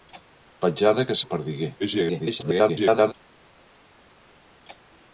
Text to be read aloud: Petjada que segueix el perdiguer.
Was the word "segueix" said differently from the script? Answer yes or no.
yes